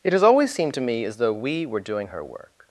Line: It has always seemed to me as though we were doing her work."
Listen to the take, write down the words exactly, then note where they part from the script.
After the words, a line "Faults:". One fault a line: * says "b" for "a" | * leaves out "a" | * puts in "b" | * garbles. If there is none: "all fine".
It has always seemed to me as though we were doing her work."
Faults:
all fine